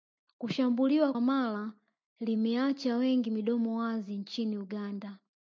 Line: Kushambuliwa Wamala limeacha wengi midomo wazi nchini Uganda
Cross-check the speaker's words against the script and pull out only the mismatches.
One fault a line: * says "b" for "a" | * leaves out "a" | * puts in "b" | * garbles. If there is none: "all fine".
all fine